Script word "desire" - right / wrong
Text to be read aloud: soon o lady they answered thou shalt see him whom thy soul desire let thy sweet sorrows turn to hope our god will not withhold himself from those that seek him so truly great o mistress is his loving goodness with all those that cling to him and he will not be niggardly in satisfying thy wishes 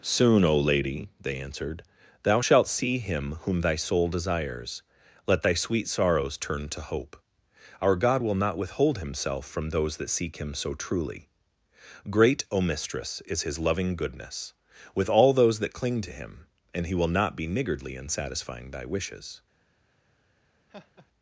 wrong